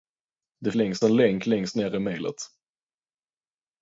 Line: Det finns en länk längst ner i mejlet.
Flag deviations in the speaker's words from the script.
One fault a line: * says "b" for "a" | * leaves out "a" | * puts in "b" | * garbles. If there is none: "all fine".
* says "längst" for "finns"